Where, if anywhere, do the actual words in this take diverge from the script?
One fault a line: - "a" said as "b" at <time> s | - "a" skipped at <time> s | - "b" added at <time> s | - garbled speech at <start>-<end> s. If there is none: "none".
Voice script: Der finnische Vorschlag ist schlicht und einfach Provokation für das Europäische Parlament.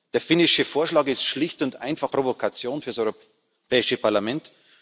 none